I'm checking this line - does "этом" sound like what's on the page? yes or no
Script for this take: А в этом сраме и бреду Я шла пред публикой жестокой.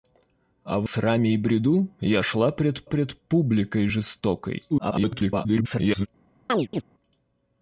no